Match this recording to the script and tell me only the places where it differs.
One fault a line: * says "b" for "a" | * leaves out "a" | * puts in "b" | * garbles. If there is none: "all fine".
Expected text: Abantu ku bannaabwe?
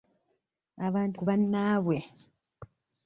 all fine